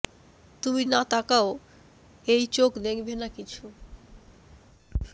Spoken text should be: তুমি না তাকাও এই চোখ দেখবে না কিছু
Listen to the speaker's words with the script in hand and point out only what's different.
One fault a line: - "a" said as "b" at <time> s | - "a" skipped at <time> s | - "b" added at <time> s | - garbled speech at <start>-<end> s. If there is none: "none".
none